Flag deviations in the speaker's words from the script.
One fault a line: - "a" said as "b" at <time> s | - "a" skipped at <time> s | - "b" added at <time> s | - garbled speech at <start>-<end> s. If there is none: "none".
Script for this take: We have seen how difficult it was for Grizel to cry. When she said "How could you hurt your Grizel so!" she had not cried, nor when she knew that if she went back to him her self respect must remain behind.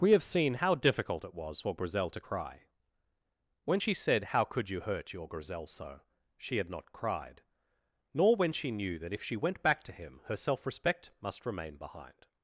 none